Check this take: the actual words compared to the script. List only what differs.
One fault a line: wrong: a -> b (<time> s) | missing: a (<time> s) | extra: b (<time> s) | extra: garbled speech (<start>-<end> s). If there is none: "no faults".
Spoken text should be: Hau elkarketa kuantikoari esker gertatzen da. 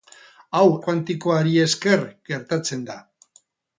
missing: elkarketa (0.7 s)